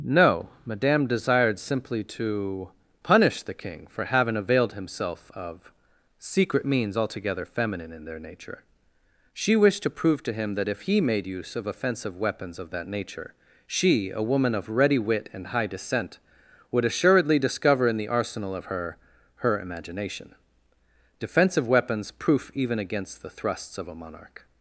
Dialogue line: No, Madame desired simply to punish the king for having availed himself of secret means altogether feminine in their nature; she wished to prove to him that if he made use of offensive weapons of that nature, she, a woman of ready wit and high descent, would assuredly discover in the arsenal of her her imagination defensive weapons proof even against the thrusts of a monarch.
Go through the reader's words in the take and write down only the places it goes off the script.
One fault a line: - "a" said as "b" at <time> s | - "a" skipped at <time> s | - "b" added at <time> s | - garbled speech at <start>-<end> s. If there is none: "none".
none